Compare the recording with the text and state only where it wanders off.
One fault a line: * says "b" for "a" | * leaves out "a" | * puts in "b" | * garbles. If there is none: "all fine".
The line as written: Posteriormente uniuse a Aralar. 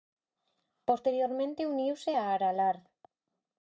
all fine